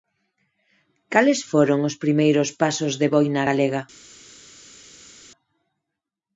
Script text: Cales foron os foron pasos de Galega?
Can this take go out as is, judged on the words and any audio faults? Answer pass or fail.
fail